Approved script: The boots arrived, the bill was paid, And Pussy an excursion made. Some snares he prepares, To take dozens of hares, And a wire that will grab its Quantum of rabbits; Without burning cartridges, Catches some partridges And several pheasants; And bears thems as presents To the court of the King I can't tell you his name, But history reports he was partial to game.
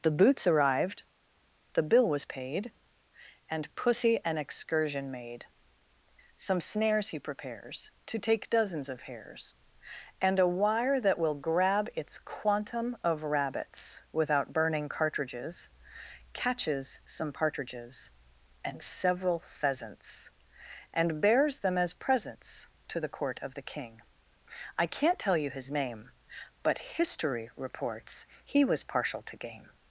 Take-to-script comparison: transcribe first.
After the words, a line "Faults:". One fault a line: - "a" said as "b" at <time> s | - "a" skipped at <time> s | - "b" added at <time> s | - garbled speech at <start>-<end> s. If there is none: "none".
The boots arrived, the bill was paid, And Pussy an excursion made. Some snares he prepares, To take dozens of hares, And a wire that will grab its Quantum of rabbits; Without burning cartridges, Catches some partridges And several pheasants; And bears them as presents To the court of the King I can't tell you his name, But history reports he was partial to game.
Faults:
- "thems" said as "them" at 21.6 s